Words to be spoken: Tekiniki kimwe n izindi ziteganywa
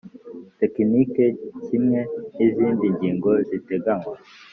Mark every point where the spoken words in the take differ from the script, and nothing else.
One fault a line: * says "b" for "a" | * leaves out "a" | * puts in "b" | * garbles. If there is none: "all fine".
* puts in "ngingo"